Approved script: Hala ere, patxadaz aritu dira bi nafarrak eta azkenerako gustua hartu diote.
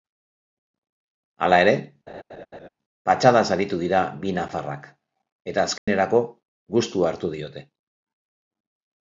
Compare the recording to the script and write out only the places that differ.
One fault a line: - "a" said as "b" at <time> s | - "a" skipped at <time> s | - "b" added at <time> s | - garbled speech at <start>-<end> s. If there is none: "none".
none